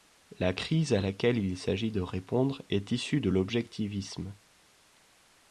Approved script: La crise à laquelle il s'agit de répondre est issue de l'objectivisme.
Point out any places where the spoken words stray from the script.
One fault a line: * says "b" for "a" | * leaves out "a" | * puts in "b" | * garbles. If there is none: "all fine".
all fine